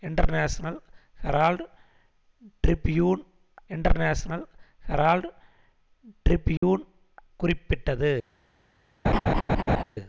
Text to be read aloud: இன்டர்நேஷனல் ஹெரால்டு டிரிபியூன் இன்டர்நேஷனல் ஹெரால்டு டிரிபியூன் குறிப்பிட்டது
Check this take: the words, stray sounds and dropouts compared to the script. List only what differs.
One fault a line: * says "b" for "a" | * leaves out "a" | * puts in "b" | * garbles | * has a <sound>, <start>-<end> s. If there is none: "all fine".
* has a dropout, 6.6-6.6 s
* has a laugh, 9.0-9.8 s